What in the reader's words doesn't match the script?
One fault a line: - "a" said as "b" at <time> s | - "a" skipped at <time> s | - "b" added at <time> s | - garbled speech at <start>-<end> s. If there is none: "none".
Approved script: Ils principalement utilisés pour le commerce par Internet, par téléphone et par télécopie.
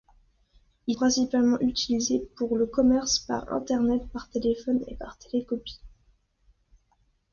none